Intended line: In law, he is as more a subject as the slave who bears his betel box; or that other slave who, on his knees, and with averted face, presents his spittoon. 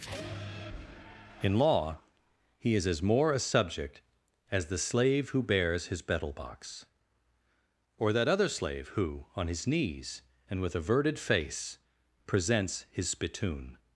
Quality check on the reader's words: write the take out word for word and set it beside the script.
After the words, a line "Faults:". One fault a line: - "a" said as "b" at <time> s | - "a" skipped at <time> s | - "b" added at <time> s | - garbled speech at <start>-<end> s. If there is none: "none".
In law, he is as more a subject as the slave who bears his betel box; or that other slave who, on his knees, and with averted face, presents his spittoon.
Faults:
none